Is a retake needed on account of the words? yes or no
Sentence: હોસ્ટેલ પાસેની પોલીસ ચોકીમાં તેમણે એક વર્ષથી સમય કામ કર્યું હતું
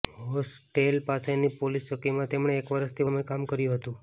no